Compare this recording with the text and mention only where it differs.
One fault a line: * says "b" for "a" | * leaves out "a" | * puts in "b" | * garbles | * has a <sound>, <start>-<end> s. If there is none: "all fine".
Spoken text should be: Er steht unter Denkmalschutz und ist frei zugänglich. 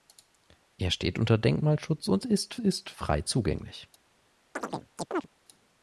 * puts in "ist"
* has a chirp, 4.5-5.3 s